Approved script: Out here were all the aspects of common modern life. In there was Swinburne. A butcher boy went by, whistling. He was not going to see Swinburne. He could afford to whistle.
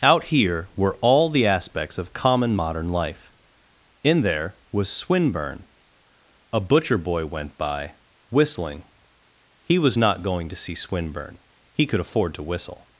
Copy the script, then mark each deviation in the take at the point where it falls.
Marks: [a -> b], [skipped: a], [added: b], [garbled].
Out here were all the aspects of common modern life. In there was Swinburne. A butcher boy went by, whistling. He was not going to see Swinburne. He could afford to whistle.